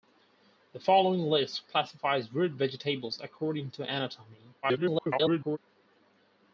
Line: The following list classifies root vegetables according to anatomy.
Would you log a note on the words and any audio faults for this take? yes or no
yes